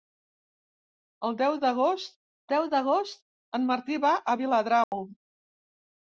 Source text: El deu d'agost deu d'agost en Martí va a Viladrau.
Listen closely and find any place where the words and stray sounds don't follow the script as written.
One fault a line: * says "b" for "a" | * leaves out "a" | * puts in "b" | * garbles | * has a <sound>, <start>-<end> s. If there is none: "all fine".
* has a dropout, 4.8-4.9 s